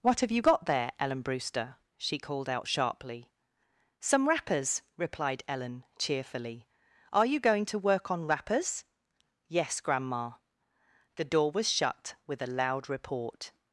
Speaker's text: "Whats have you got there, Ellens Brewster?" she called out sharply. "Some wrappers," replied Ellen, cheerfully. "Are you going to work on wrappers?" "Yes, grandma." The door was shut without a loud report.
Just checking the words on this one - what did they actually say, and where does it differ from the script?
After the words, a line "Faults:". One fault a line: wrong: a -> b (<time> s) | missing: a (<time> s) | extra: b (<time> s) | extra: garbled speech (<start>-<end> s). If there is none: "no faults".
"What have you got there, Ellen Brewster?" she called out sharply. "Some wrappers," replied Ellen, cheerfully. "Are you going to work on wrappers?" "Yes, grandma." The door was shut with a loud report.
Faults:
wrong: Whats -> What (0.0 s)
wrong: Ellens -> Ellen (1.0 s)
wrong: without -> with (12.3 s)